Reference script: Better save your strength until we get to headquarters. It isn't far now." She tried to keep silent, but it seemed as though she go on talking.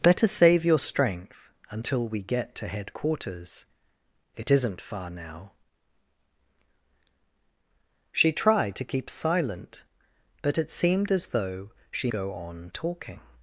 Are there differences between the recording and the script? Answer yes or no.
no